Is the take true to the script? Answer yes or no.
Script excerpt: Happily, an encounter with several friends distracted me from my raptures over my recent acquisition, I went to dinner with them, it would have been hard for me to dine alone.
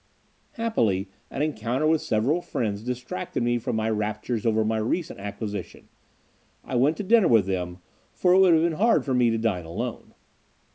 no